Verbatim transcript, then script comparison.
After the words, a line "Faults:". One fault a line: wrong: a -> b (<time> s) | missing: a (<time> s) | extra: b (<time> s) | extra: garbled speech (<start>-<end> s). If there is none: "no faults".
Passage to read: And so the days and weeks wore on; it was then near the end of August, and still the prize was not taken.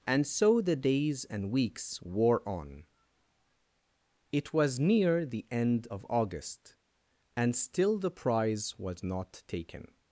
And so the days and weeks wore on; it was near the end of August, and still the prize was not taken.
Faults:
missing: then (4.8 s)